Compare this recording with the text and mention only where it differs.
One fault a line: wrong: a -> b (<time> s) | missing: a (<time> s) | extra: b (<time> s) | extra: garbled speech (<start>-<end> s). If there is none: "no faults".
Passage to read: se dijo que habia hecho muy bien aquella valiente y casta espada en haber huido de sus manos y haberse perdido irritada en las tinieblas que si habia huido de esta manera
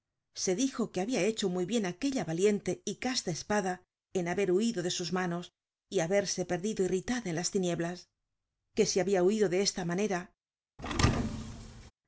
no faults